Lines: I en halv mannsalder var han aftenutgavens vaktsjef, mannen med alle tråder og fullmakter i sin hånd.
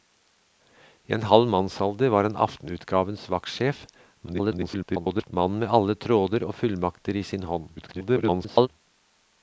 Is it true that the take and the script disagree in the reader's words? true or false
true